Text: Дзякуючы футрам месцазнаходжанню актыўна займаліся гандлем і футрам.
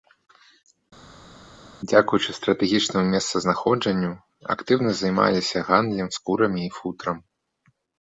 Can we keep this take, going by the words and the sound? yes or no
no